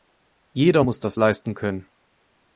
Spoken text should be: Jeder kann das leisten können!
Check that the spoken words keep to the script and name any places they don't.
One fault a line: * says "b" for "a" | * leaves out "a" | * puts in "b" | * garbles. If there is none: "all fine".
* says "muss" for "kann"